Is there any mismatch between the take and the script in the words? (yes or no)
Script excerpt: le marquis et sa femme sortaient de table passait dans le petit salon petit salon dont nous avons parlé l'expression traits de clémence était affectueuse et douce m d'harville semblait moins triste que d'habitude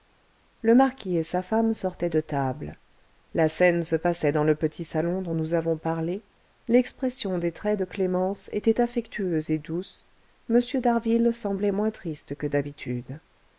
yes